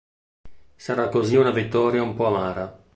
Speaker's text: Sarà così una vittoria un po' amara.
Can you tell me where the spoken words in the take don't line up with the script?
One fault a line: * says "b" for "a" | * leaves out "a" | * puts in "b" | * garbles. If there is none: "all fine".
all fine